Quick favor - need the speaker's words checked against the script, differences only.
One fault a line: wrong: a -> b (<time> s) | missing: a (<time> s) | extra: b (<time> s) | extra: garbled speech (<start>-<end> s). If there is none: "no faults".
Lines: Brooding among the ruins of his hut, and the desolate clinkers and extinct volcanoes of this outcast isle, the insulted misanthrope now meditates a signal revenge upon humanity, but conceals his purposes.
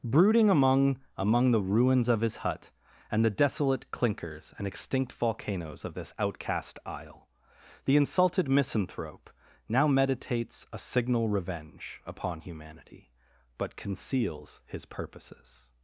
extra: among (1.1 s)